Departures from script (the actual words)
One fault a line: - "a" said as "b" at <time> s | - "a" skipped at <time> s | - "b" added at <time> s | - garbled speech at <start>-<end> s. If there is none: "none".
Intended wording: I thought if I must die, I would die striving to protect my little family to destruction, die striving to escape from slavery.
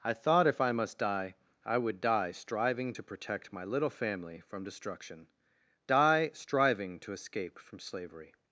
- "to" said as "from" at 4.4 s